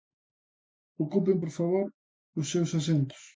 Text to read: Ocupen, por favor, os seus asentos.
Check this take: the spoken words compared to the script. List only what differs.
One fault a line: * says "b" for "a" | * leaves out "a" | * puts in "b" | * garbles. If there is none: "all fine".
all fine